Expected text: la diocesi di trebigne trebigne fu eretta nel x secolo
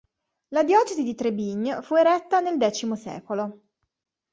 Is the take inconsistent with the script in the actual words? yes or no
yes